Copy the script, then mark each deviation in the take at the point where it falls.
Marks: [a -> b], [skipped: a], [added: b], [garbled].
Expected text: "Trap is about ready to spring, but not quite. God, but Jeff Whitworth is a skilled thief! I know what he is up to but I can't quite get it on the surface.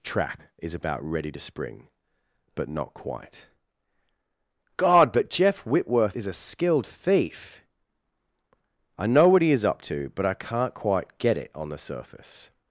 "Trap is about ready to spring, but not quite. God, but Jeff Whitworth is a skilled thief! I know what he is up to but I can't quite get it on the surface.